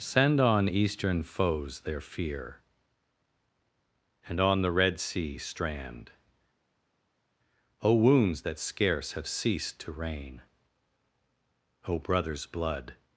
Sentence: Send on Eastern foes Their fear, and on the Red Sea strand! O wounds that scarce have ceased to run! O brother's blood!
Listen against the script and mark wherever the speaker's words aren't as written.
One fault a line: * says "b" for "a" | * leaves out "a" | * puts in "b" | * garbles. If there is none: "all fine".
* says "rain" for "run"